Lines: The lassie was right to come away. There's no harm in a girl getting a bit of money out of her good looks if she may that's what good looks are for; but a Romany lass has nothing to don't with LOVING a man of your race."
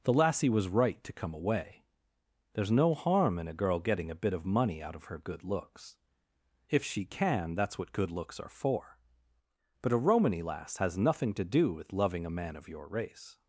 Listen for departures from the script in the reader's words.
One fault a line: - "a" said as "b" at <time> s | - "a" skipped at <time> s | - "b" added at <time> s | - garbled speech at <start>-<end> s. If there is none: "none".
- "may" said as "can" at 7.0 s
- "don't" said as "do" at 11.4 s